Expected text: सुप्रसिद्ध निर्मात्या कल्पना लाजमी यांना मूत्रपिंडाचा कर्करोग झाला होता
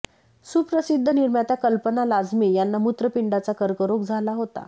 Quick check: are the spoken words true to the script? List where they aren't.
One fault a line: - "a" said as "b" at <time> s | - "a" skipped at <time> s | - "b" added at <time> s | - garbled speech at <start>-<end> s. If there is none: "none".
none